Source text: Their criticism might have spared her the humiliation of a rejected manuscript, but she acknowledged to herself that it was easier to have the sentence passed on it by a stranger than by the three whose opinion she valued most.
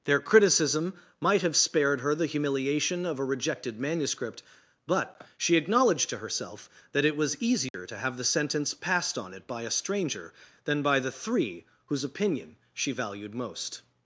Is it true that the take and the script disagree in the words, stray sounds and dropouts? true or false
true